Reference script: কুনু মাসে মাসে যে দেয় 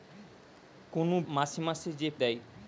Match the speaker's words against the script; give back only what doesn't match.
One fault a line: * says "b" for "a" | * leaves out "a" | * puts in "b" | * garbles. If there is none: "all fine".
all fine